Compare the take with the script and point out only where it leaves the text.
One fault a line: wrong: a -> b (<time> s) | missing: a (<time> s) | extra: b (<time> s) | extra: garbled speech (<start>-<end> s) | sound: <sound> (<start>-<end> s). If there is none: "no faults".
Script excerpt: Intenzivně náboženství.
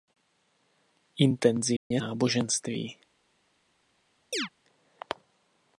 sound: dropout (1.8-1.9 s)
sound: chirp (4.3-4.5 s)